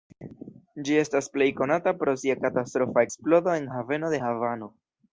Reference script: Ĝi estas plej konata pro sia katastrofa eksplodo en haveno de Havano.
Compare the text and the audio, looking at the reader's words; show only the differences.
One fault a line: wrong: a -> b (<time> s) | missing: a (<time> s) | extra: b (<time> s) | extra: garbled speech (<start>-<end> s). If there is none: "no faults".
no faults